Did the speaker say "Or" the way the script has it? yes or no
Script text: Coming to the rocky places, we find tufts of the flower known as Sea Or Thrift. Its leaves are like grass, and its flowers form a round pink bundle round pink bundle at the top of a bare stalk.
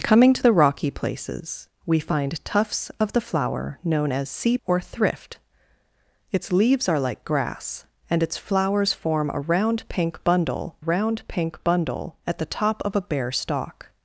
yes